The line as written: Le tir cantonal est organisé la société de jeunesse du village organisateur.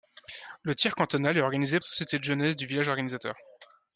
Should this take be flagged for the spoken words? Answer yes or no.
no